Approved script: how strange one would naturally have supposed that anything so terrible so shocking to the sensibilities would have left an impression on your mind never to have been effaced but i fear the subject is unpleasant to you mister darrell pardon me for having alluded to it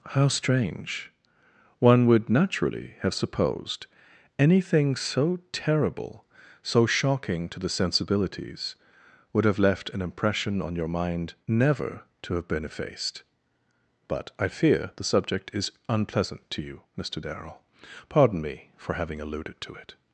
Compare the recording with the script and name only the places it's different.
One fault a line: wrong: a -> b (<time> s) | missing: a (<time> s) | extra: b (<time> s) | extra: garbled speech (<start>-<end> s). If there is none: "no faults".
missing: that (3.9 s)